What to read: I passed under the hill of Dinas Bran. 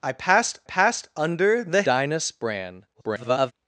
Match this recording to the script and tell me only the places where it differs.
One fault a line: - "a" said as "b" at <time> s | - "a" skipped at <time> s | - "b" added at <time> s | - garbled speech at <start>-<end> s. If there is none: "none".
- "passed" added at 0.6 s
- "hill of" skipped at 1.8 s
- garbled speech at 2.9-3.5 s